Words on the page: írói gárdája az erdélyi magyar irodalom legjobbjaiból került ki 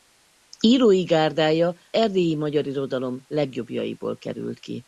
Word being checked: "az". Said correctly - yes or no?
no